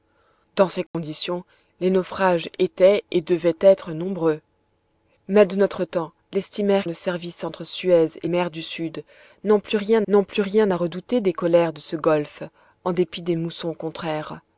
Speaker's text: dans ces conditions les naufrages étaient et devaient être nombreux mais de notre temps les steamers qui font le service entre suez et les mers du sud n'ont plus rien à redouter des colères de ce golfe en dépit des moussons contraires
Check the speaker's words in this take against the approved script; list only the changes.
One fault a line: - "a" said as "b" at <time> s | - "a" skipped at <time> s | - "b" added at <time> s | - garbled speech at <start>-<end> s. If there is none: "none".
- "qui font" skipped at 6.9 s
- "les" skipped at 8.3 s
- "n'ont plus rien" added at 10.1 s